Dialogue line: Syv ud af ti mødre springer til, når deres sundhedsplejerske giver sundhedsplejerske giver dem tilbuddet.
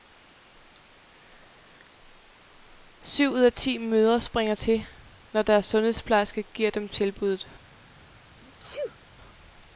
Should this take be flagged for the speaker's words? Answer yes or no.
yes